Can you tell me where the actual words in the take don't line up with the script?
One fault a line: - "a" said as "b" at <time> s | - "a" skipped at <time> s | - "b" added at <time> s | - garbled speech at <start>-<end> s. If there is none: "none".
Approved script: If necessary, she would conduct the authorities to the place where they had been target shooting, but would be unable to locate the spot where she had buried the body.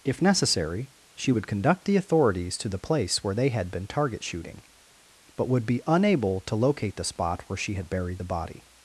none